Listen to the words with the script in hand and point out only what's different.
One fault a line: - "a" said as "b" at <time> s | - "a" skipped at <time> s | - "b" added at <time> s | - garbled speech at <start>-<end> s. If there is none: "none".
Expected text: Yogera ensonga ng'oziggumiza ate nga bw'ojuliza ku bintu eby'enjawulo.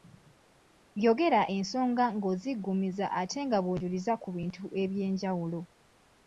none